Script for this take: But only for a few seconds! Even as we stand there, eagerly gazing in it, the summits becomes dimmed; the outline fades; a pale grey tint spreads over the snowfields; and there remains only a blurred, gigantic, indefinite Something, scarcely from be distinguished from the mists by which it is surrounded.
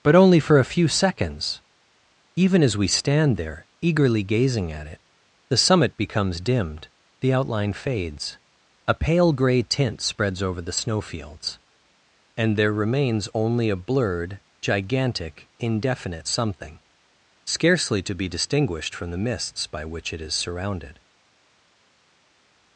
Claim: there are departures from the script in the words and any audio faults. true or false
true